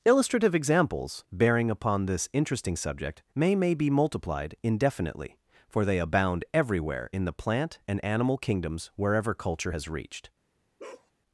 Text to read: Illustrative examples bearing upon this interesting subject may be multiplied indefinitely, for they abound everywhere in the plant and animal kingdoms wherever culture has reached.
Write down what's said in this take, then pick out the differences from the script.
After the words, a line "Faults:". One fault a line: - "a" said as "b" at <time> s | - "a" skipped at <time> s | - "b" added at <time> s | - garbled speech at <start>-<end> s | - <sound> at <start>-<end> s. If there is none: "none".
Illustrative examples bearing upon this interesting subject may may be multiplied indefinitely, for they abound everywhere in the plant and animal kingdoms wherever culture has reached.
Faults:
- "may" added at 3.6 s
- bark at 10.8-11.1 s